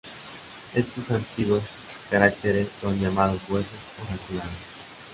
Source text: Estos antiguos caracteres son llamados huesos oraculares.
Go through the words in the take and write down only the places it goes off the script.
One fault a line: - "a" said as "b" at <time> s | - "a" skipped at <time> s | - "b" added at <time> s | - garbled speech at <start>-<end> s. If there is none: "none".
none